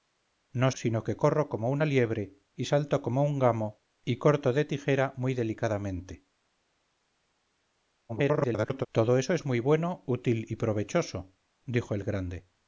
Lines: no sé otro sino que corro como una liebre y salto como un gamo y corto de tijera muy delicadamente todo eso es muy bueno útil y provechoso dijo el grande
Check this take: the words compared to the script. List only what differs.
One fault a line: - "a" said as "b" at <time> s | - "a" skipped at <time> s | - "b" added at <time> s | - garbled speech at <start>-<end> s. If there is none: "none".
- "sé otro" skipped at 0.7 s
- garbled speech at 8.1-8.9 s